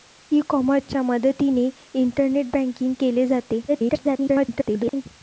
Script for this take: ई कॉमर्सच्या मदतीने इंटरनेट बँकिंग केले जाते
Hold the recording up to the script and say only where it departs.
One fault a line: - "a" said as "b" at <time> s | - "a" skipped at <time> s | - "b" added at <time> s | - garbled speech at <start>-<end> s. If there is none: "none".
- garbled speech at 3.7-5.1 s